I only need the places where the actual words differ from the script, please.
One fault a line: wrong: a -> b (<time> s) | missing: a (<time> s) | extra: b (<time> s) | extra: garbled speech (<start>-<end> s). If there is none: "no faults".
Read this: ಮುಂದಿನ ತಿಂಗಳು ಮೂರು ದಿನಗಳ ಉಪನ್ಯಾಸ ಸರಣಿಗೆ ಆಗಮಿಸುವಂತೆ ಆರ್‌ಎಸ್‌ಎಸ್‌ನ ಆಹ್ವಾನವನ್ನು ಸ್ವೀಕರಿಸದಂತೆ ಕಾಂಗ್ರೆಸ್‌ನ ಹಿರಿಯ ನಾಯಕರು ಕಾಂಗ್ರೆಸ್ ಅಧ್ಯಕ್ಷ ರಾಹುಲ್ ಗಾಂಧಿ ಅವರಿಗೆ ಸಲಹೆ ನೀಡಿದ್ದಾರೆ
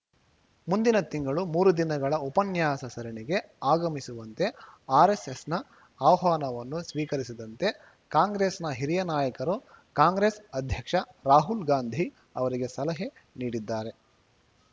no faults